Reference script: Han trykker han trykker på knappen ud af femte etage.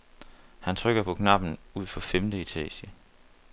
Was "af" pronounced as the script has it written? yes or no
no